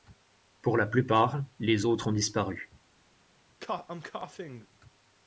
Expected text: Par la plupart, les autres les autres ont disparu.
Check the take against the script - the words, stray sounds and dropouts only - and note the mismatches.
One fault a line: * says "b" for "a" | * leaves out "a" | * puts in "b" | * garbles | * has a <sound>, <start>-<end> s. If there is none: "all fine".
* says "Pour" for "Par"
* leaves out "les autres"
* has a cough, 3.6-4.7 s